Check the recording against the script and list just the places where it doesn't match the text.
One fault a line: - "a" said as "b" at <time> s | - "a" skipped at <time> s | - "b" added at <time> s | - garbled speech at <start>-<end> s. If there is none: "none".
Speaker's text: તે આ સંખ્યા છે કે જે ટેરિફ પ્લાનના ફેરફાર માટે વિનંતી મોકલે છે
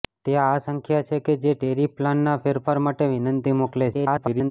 - garbled speech at 3.9-4.5 s